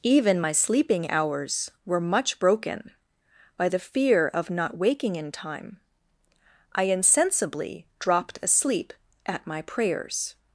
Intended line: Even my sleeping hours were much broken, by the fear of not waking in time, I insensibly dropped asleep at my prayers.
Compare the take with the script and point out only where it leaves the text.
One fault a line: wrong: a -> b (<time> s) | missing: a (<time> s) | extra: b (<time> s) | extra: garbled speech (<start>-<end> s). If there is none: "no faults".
no faults